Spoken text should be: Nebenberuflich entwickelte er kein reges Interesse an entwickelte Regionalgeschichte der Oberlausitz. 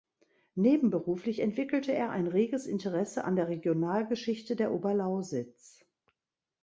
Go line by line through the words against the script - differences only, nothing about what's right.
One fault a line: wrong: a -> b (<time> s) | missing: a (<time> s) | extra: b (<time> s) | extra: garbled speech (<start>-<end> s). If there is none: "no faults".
wrong: kein -> ein (2.1 s)
wrong: entwickelte -> der (3.3 s)